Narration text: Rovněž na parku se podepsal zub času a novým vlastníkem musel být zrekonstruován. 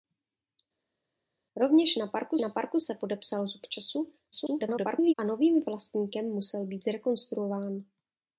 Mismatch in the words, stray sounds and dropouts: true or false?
true